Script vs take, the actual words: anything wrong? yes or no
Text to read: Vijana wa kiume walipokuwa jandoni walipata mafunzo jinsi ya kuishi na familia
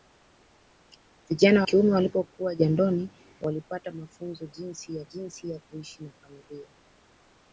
yes